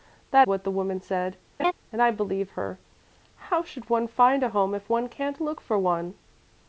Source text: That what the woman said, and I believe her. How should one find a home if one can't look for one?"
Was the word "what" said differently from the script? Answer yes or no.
no